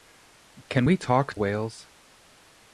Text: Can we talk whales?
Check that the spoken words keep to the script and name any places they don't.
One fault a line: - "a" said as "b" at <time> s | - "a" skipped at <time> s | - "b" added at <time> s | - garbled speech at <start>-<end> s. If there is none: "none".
none